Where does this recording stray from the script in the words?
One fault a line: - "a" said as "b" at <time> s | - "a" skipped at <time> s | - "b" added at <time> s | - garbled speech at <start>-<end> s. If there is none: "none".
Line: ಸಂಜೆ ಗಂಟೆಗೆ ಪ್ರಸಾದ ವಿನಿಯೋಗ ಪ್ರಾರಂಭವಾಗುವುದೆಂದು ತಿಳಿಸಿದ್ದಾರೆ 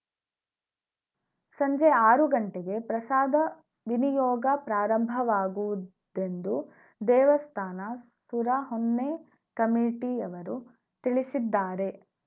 - "ಆರು" added at 2.0 s
- "ದೇವಸ್ಥಾನ ಸುರಹೊನ್ನೆ ಕಮಿಟಿಯವರು" added at 7.0 s